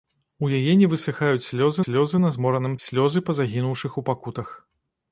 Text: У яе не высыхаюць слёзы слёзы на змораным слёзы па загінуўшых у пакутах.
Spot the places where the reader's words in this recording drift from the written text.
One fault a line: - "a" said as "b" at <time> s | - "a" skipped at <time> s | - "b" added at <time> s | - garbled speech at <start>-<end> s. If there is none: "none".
none